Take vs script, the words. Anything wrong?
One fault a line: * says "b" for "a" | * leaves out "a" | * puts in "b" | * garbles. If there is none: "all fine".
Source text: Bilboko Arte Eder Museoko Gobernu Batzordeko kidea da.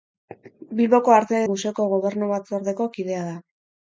* leaves out "Eder"